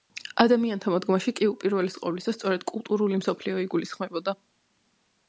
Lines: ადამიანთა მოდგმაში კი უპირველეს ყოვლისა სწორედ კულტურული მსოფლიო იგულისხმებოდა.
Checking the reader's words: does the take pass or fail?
pass